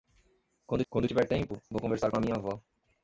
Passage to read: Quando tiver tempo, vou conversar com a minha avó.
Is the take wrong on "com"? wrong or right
wrong